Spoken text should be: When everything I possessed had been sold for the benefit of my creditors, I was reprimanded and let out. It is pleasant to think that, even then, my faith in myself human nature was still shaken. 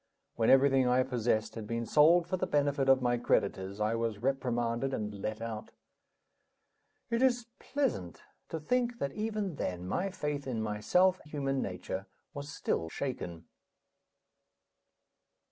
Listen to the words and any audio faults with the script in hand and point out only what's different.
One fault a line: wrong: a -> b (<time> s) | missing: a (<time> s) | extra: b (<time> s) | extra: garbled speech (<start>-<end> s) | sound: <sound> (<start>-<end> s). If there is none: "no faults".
no faults